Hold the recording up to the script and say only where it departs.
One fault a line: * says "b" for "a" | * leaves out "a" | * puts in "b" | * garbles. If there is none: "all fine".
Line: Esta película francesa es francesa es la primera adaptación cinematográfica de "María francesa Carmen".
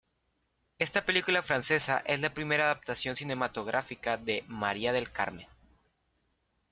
* leaves out "francesa es"
* says "del" for "francesa"